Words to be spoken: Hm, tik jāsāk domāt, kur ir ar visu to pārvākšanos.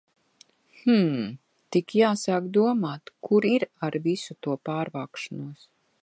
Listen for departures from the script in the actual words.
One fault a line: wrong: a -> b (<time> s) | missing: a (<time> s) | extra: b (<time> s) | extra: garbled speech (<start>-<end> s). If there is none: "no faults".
no faults